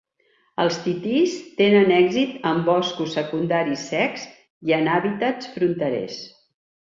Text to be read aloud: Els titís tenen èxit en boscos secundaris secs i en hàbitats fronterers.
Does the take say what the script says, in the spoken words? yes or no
yes